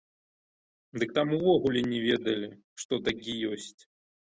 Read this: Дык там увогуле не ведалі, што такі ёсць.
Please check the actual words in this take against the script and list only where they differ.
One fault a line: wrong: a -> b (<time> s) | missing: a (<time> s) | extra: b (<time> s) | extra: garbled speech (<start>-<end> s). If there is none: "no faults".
no faults